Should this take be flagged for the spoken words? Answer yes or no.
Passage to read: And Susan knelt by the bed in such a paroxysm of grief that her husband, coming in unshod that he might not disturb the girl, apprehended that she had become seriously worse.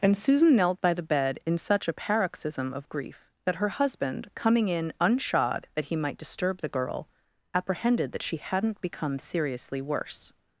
yes